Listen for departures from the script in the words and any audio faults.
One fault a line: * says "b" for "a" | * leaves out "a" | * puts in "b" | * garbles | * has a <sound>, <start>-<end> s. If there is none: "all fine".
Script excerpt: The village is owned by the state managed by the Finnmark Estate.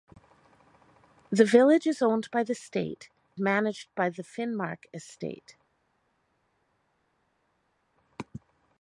all fine